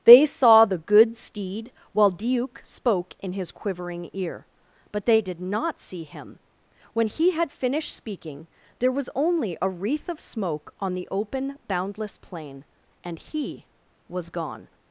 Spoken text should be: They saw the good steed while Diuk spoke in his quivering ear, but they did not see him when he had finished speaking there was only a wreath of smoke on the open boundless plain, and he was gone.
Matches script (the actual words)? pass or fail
pass